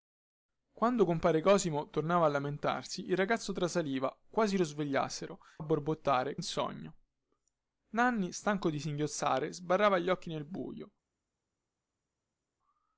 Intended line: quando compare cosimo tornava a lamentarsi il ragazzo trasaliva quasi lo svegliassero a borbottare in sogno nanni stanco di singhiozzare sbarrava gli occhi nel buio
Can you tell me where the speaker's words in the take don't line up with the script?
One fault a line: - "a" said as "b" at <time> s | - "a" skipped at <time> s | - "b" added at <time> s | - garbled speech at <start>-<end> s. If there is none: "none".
none